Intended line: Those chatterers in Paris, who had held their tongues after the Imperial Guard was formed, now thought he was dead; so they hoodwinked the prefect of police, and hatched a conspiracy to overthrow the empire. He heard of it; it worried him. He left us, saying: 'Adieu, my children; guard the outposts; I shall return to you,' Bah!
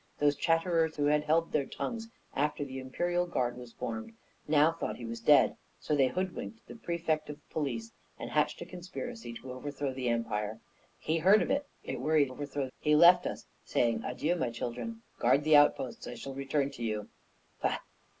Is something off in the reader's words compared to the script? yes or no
yes